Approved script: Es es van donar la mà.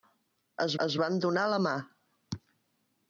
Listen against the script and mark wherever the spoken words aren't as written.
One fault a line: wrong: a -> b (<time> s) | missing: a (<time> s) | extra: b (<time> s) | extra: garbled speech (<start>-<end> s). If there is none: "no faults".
no faults